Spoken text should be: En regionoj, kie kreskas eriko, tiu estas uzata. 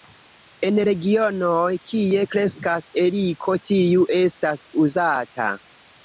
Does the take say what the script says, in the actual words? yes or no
yes